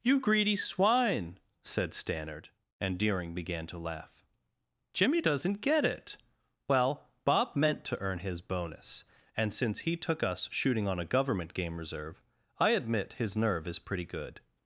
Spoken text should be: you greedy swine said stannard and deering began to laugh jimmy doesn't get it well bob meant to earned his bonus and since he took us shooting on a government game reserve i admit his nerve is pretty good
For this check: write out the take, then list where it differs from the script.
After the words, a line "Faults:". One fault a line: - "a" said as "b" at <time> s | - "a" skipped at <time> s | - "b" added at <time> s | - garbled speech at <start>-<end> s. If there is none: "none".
you greedy swine said stannard and deering began to laugh jimmy doesn't get it well bob meant to earn his bonus and since he took us shooting on a government game reserve i admit his nerve is pretty good
Faults:
- "earned" said as "earn" at 8.0 s